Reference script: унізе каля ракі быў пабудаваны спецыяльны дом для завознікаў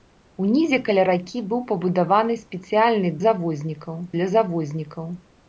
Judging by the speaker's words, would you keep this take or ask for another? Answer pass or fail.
fail